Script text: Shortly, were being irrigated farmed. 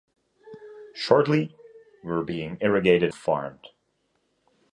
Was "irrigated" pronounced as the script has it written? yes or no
yes